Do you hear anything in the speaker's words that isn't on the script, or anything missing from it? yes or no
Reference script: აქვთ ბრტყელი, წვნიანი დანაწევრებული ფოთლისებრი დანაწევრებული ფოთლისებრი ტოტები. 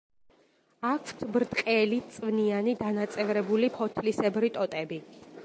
yes